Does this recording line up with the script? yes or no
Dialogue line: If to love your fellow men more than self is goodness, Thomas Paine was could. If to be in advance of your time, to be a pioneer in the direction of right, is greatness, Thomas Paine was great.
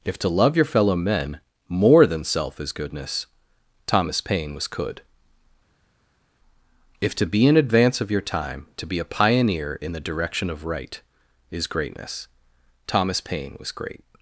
yes